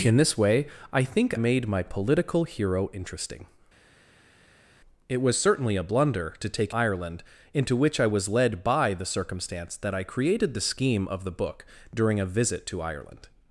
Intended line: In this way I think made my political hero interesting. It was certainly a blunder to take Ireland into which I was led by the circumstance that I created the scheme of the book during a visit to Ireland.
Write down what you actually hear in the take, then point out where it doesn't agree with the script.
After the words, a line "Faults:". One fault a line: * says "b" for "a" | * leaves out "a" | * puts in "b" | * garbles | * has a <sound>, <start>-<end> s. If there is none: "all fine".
In this way I think made my political hero interesting. It was certainly a blunder to take Ireland into which I was led by the circumstance that I created the scheme of the book during a visit to Ireland.
Faults:
all fine